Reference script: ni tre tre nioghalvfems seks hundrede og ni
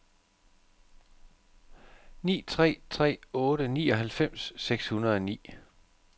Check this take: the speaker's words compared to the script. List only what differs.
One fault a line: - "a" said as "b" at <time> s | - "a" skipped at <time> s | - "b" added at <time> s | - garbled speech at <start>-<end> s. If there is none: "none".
- "otte" added at 3.4 s